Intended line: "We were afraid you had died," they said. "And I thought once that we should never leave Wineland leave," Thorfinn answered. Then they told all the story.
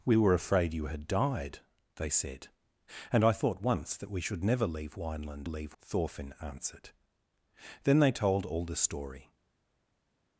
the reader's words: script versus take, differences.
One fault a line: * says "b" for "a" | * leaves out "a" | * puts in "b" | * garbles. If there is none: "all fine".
all fine